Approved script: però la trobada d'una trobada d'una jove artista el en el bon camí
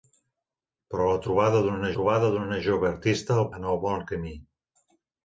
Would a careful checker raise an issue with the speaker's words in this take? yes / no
no